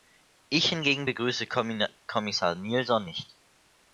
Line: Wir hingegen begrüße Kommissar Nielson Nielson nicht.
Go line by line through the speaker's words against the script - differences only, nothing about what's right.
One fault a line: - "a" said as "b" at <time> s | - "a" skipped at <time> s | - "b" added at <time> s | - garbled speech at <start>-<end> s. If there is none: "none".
- "Wir" said as "Ich" at 0.5 s
- "Nielson" skipped at 3.0 s